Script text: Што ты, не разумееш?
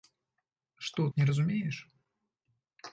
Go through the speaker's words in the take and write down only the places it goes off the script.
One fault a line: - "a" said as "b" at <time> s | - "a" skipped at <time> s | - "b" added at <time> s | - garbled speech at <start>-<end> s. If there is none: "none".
- "ты" skipped at 1.0 s